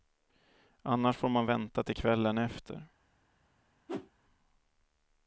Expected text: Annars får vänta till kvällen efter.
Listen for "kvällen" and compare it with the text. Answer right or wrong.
right